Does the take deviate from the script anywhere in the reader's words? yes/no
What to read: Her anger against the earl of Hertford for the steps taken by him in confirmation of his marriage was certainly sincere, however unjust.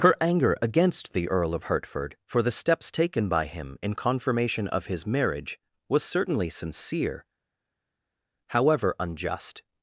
no